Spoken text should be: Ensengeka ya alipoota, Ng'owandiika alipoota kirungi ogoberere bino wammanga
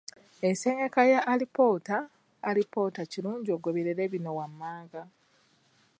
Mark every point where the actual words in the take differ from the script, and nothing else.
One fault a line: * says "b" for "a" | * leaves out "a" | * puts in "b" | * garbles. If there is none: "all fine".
* leaves out "Ng'owandiika"